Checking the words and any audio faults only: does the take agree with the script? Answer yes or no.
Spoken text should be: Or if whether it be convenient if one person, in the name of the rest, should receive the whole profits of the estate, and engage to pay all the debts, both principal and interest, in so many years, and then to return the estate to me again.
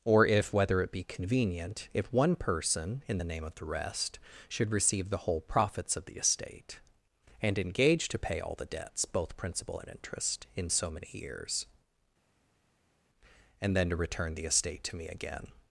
yes